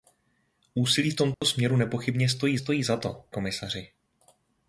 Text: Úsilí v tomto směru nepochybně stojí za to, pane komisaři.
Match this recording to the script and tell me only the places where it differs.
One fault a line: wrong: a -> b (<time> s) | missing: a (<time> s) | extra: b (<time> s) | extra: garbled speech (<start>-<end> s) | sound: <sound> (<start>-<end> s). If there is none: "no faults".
sound: dropout (1.3-1.4 s)
extra: stojí (2.6 s)
missing: pane (3.2 s)